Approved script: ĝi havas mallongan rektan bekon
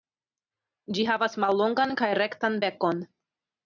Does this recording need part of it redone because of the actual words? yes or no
yes